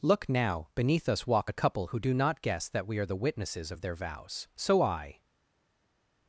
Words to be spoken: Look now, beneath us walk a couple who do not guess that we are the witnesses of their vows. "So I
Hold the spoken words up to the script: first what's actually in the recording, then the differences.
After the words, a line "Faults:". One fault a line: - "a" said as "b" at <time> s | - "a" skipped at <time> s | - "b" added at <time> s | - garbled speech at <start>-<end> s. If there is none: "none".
Look now, beneath us walk a couple who do not guess that we are the witnesses of their vows. "So I
Faults:
none